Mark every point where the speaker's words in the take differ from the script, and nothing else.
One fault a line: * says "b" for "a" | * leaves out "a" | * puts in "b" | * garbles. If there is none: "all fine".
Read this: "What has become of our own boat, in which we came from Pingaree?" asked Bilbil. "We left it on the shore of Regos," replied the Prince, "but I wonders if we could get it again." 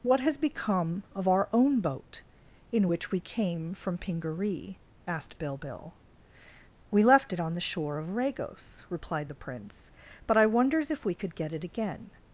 all fine